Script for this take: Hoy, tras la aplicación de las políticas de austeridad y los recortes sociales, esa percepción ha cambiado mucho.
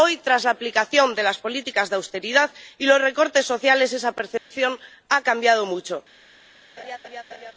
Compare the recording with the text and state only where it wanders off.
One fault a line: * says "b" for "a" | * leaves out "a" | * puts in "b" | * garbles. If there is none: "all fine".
all fine